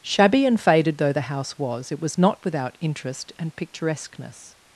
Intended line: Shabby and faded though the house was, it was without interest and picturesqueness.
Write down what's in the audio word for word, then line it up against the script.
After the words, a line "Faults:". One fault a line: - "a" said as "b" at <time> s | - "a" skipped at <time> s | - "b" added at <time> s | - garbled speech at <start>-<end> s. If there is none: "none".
Shabby and faded though the house was, it was not without interest and picturesqueness.
Faults:
- "not" added at 2.2 s